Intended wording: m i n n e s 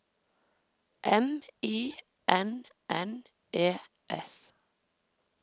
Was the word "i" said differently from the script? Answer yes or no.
no